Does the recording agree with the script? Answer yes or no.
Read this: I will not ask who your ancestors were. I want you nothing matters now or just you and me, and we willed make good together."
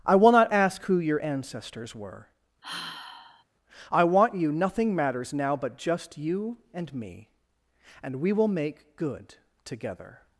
no